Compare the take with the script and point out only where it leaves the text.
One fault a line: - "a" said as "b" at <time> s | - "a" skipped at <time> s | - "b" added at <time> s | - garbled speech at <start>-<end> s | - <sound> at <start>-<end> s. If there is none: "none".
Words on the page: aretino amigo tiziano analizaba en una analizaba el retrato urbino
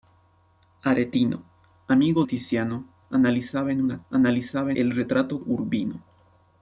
none